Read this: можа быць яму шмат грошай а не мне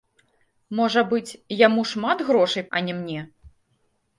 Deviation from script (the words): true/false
false